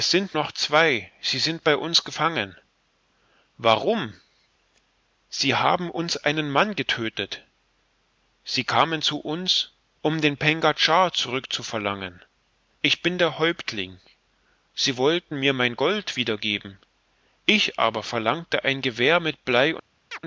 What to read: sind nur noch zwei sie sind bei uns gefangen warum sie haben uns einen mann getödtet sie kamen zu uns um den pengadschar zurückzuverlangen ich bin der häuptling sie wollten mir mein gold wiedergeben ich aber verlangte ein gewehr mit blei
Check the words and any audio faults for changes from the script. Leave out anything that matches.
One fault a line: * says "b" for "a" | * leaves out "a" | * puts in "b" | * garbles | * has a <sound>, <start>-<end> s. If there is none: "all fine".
* leaves out "nur"
* has a chirp, 20.1-20.2 s